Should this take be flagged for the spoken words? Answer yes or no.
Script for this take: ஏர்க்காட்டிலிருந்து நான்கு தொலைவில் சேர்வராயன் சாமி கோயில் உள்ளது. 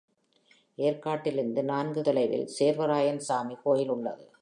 no